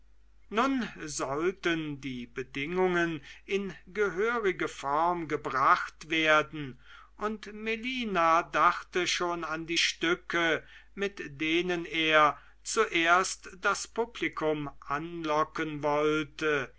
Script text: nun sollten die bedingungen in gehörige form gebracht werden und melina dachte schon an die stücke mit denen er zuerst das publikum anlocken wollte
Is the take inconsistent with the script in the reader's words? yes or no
no